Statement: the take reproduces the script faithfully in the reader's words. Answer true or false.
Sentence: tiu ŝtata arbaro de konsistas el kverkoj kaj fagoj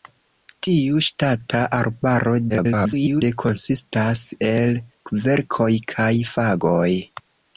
false